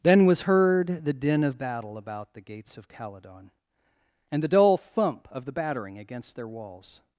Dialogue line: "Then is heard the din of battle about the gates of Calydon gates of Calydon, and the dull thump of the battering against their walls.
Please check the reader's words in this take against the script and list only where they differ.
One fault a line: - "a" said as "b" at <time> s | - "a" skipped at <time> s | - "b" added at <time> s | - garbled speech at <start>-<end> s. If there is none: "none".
- "is" said as "was" at 0.2 s
- "gates of Calydon" skipped at 3.5 s